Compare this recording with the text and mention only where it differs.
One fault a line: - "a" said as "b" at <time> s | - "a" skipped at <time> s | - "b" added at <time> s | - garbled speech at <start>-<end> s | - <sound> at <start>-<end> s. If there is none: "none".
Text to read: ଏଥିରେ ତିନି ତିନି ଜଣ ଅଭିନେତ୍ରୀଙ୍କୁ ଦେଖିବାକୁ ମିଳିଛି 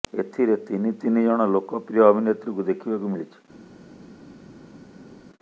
- "ଲୋକପ୍ରିୟ" added at 1.5 s